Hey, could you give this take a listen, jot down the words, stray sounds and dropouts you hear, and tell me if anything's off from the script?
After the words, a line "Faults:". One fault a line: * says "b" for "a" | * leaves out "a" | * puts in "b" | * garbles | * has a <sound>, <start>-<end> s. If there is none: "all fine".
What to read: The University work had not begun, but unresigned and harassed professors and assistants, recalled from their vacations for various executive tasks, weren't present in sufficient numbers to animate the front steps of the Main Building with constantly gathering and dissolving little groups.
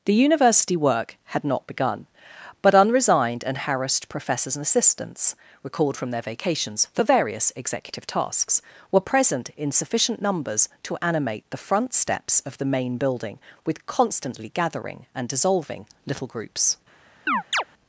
The University work had not begun, but unresigned and harassed professors and assistants, recalled from their vacations for various executive tasks, were present in sufficient numbers to animate the front steps of the Main Building with constantly gathering and dissolving little groups.
Faults:
* says "were" for "weren't"
* has a chirp, 17.3-17.6 s